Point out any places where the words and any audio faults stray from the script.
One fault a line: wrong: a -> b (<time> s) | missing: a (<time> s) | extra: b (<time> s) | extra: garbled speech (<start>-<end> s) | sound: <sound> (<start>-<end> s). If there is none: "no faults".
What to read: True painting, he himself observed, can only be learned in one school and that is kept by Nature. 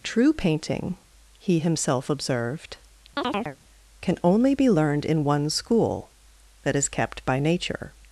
sound: chirp (3.2-3.6 s)
missing: and (6.1 s)